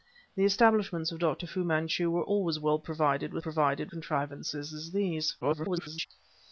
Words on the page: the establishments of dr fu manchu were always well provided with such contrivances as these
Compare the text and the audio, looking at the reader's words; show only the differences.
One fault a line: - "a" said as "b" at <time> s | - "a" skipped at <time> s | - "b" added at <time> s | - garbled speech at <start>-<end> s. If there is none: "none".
- "such" said as "provided" at 3.4 s
- garbled speech at 5.4-6.1 s